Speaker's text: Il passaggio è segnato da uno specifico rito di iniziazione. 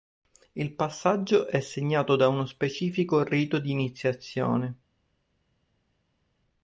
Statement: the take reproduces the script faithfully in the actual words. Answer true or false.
true